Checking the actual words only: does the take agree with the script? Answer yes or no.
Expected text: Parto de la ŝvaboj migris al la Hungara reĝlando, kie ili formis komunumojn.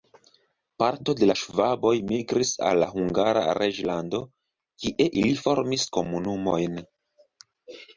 yes